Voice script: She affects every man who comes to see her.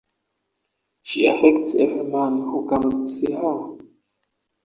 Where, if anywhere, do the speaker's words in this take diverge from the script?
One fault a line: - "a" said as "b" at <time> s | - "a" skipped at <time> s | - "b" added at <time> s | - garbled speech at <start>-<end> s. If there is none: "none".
none